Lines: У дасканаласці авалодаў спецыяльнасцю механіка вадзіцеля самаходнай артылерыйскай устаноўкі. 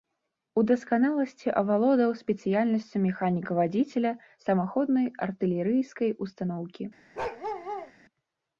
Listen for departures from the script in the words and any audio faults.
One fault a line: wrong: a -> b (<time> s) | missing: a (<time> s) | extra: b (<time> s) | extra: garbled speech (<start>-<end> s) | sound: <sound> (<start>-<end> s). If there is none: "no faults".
sound: bark (7.1-7.9 s)